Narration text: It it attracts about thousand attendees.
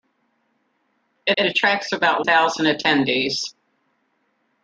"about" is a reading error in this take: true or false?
false